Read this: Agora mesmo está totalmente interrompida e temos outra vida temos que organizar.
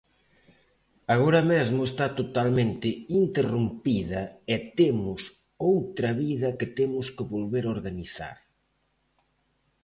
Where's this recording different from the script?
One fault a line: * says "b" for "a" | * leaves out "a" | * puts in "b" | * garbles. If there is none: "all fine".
* puts in "que"
* puts in "volver"